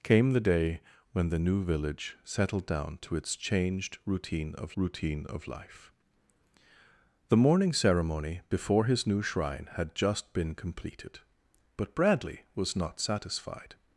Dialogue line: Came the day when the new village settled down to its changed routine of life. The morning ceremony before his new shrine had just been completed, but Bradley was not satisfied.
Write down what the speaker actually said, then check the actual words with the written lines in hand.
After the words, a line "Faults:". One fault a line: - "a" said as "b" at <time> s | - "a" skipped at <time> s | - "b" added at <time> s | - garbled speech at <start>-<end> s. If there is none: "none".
Came the day when the new village settled down to its changed routine of routine of life. The morning ceremony before his new shrine had just been completed, but Bradley was not satisfied.
Faults:
- "routine of" added at 4.7 s